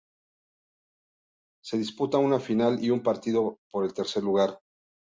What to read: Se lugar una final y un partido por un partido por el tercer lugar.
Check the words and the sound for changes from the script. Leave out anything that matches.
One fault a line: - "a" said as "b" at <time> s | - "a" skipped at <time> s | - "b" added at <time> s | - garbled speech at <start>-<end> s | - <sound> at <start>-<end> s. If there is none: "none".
- "lugar" said as "disputa" at 1.8 s
- "un partido por" skipped at 3.9 s